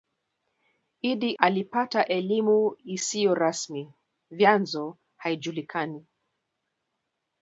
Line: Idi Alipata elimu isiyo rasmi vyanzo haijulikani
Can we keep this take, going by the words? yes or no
yes